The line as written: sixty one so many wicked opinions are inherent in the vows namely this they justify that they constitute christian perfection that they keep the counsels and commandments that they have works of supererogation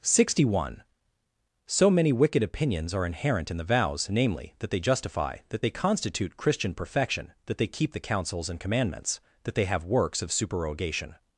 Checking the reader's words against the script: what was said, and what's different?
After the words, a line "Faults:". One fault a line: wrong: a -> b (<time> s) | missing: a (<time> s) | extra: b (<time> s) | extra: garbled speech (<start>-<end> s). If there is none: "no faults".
sixty one so many wicked opinions are inherent in the vows namely that they justify that they constitute christian perfection that they keep the counsels and commandments that they have works of supererogation
Faults:
wrong: this -> that (4.6 s)